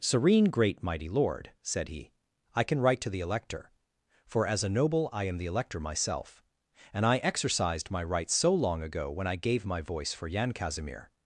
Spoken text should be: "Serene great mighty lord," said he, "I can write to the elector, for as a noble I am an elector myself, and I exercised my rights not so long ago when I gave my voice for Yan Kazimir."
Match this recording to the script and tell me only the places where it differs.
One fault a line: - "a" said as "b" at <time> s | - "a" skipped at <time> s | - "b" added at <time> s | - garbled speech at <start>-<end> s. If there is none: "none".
- "an" said as "the" at 5.4 s
- "not" skipped at 8.3 s